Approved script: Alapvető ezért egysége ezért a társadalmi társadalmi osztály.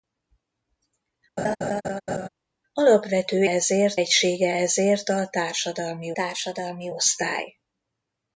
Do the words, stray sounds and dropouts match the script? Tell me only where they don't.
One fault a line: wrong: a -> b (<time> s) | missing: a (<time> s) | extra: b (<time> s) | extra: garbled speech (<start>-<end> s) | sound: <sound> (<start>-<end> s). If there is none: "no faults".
sound: laugh (1.4-2.3 s)